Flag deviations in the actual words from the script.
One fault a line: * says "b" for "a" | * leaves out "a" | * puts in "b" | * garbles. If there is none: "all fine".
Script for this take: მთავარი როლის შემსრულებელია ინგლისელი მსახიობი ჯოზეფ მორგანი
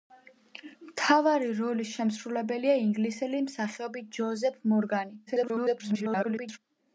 * garbles